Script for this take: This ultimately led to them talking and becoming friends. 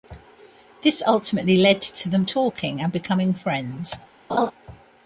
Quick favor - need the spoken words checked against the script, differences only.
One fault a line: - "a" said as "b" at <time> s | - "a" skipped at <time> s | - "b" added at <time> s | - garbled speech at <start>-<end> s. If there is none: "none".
none